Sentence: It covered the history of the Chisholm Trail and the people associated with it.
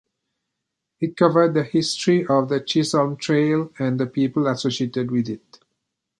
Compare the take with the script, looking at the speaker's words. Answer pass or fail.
pass